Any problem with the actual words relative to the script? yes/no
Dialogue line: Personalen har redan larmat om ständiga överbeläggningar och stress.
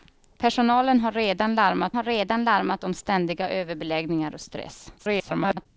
yes